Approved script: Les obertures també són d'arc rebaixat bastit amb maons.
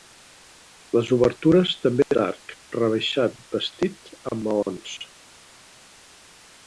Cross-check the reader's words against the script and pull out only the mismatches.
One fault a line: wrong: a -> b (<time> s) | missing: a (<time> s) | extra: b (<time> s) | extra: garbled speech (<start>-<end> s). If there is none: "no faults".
missing: són (2.1 s)